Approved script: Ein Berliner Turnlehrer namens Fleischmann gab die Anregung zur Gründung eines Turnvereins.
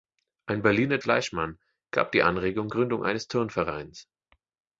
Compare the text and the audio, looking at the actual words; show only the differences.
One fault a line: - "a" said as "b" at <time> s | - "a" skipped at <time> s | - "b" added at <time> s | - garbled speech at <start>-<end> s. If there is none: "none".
- "Turnlehrer namens" skipped at 1.0 s
- "zur" skipped at 2.7 s